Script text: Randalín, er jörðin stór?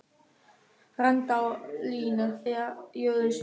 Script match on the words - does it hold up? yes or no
yes